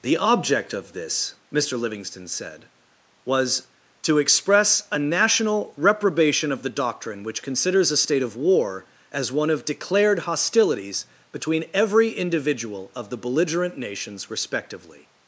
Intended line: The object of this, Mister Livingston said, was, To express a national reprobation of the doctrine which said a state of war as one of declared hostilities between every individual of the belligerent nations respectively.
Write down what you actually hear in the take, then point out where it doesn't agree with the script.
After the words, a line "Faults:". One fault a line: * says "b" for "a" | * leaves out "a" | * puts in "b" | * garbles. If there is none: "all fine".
The object of this, Mister Livingston said, was, To express a national reprobation of the doctrine which considers a state of war as one of declared hostilities between every individual of the belligerent nations respectively.
Faults:
* says "considers" for "said"